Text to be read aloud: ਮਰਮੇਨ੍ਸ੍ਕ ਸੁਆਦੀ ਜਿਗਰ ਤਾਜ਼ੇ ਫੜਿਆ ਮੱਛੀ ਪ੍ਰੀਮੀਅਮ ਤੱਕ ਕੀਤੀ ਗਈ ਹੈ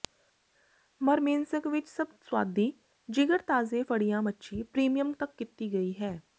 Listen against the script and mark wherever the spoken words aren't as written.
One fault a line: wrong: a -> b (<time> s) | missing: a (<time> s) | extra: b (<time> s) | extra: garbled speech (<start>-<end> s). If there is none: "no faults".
extra: ਵਿੱਚ ਸਭ (1.7 s)